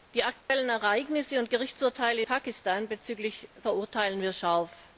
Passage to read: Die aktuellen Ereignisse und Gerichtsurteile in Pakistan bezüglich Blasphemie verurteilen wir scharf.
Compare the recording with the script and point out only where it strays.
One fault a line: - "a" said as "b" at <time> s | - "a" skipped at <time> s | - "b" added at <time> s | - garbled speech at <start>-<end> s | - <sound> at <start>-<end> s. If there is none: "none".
- dropout at 0.4-0.5 s
- "in" skipped at 2.2 s
- "Blasphemie" skipped at 3.5 s